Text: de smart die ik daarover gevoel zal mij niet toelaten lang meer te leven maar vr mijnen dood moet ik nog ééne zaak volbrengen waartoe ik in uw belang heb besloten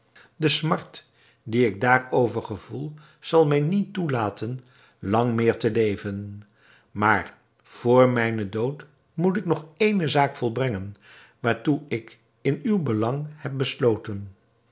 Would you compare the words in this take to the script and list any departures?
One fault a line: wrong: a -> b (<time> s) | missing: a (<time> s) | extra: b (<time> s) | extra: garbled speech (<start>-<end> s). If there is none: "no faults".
no faults